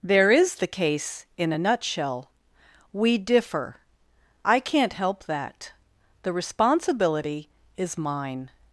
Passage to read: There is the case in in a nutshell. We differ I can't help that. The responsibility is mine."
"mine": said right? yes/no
yes